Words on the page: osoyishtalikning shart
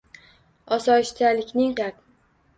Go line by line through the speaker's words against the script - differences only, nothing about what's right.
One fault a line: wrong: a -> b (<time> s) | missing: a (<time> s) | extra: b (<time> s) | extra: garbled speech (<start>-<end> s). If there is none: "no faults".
no faults